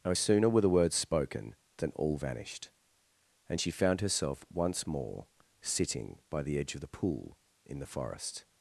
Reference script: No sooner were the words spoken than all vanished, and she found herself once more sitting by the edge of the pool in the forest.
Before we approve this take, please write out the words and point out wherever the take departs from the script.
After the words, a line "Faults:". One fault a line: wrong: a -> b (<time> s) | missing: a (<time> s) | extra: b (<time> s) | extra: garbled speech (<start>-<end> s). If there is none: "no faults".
No sooner were the words spoken than all vanished, and she found herself once more sitting by the edge of the pool in the forest.
Faults:
no faults